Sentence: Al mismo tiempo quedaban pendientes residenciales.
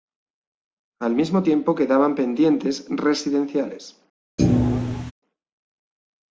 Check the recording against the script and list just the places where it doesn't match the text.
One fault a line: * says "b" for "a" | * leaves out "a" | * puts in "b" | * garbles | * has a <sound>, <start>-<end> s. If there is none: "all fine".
* has a thud, 4.4-5.1 s